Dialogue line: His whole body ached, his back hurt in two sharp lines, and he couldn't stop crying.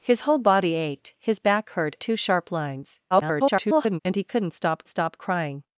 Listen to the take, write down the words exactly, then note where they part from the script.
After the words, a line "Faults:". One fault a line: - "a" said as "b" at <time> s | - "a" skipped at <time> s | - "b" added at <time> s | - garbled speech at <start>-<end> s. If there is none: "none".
His whole body ached, his back hurt two sharp lines, [garbled] and he couldn't stop stop crying.
Faults:
- "in" skipped at 1.9 s
- garbled speech at 3.1-4.0 s
- "stop" added at 4.9 s